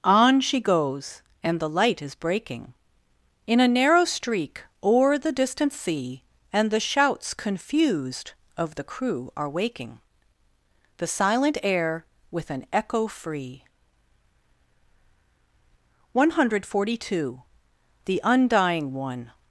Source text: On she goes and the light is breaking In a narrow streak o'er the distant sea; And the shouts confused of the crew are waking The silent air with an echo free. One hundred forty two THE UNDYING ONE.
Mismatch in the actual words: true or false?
false